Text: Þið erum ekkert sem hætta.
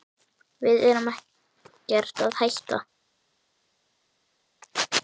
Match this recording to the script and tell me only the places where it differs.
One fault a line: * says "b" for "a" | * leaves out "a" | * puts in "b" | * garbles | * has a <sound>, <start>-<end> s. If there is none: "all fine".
* says "Við" for "Þið"
* says "að" for "sem"